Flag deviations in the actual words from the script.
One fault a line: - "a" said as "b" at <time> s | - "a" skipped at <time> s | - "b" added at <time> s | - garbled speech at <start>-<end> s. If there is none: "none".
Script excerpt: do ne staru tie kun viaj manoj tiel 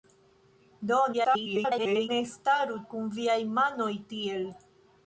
- garbled speech at 1.1-2.1 s
- "tie" skipped at 2.8 s